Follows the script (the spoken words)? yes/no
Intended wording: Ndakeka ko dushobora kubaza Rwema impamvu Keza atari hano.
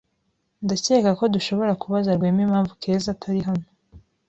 yes